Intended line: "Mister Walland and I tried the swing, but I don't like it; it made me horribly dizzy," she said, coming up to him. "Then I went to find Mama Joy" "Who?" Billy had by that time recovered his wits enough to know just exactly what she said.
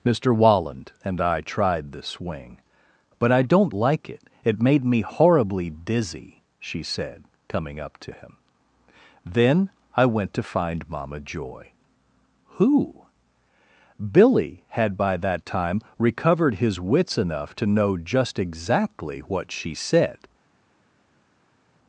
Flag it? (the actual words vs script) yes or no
no